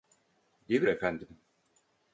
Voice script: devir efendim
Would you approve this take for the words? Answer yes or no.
yes